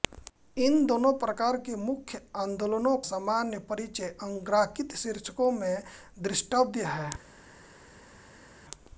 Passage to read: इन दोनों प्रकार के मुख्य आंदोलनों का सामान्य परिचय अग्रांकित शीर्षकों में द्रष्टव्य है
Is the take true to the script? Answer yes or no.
no